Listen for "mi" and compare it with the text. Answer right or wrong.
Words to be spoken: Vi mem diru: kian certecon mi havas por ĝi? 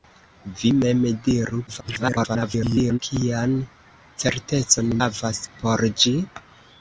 wrong